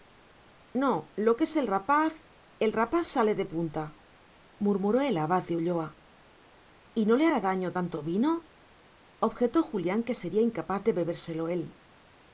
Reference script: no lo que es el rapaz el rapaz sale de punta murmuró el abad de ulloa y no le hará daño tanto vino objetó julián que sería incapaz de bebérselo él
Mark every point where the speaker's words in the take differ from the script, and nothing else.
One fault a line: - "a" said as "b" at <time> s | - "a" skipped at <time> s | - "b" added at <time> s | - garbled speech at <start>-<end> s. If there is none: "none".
none